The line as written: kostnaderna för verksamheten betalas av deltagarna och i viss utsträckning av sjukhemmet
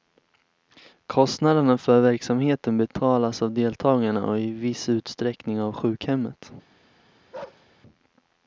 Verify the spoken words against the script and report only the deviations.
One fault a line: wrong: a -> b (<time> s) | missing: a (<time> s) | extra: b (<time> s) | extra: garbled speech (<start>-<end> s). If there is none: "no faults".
no faults